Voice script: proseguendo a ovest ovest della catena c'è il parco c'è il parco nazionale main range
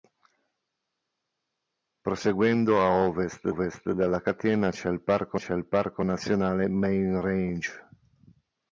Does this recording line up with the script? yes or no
yes